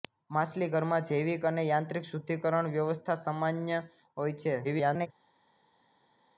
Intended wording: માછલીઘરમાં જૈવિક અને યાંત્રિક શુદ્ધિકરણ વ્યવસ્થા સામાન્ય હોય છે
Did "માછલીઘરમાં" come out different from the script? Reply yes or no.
no